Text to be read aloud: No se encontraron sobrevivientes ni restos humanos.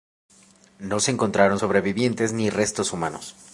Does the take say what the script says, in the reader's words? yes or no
yes